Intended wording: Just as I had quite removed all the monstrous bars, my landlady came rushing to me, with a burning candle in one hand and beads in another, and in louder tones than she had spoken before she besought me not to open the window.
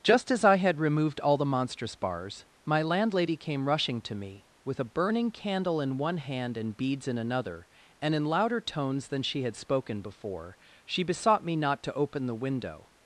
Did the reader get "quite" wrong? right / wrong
wrong